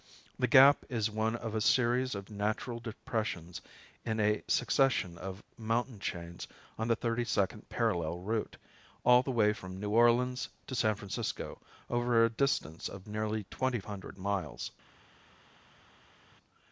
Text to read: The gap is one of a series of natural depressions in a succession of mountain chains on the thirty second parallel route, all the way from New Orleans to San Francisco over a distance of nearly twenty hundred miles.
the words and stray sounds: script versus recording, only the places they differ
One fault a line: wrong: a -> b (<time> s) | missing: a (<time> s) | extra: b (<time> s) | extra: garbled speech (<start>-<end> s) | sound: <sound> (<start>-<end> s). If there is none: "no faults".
no faults